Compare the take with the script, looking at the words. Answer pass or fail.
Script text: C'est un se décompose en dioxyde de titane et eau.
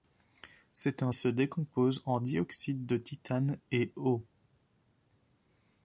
pass